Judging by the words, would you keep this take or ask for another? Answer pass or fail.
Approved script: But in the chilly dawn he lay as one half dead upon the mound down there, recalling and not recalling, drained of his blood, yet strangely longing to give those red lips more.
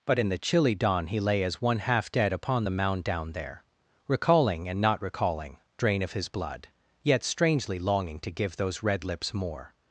fail